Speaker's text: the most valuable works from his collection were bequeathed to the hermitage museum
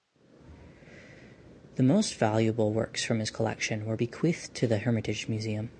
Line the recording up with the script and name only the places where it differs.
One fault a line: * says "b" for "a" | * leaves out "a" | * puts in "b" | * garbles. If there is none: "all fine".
all fine